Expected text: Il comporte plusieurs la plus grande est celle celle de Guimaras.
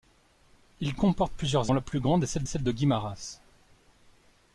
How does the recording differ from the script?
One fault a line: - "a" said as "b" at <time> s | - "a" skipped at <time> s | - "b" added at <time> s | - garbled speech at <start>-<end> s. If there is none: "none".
none